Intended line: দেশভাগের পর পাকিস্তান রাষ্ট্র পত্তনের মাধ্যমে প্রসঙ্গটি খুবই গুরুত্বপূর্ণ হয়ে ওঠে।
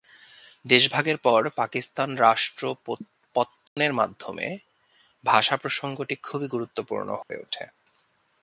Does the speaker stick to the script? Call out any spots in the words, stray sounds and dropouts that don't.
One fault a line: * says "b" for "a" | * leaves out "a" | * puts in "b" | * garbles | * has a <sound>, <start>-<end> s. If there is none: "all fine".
* has a dropout, 3.7-3.8 s
* puts in "ভাষা"
* has a dropout, 7.2-7.3 s